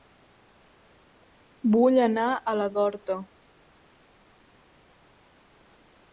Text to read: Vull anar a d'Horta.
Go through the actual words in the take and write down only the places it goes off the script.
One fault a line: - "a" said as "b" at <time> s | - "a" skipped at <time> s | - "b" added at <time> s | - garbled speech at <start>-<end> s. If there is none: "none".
- "la" added at 2.6 s